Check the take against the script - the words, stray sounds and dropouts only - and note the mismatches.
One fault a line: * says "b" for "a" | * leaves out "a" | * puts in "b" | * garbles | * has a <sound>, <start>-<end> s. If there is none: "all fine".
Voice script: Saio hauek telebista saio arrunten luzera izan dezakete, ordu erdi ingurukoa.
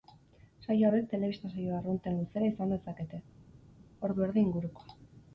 all fine